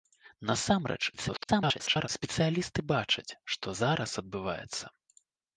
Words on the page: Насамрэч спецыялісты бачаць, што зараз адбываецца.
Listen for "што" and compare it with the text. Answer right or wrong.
right